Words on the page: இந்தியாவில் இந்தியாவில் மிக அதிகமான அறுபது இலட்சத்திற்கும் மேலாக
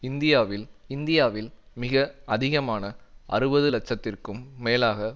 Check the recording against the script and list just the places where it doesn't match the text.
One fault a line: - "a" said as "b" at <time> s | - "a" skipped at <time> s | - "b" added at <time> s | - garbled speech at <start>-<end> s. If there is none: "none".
none